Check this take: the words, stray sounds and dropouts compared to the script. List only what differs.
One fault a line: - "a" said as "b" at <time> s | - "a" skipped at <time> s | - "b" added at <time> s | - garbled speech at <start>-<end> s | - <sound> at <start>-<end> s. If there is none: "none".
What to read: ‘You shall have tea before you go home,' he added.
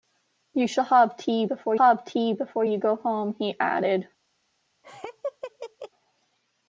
- "have tea before" added at 1.7 s
- laugh at 4.8-5.9 s